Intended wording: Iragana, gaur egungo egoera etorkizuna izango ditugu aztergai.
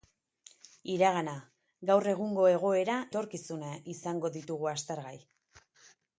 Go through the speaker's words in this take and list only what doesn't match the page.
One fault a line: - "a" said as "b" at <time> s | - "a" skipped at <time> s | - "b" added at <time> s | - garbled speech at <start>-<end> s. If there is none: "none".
none